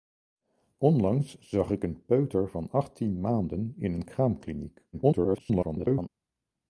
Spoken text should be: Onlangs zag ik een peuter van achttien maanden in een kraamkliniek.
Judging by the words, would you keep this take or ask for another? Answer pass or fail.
fail